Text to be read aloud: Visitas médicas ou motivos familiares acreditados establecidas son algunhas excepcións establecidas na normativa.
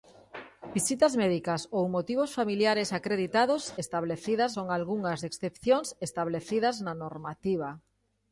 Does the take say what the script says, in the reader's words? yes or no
yes